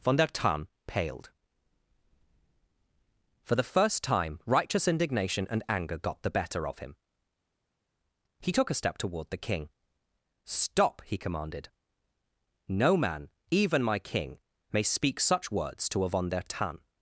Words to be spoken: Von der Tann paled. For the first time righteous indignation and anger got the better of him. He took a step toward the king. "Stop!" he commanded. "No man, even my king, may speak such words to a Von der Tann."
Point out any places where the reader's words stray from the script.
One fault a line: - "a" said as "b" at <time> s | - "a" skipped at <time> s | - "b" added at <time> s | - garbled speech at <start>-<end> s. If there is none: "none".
none